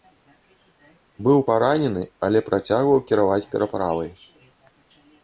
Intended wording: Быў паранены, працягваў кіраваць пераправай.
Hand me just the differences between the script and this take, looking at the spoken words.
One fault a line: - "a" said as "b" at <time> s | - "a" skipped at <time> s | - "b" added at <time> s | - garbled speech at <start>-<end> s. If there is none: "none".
- "але" added at 2.3 s